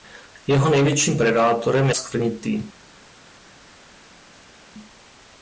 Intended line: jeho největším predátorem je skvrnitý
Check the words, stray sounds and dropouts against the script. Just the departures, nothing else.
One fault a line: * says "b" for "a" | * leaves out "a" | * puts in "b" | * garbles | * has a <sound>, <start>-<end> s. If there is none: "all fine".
all fine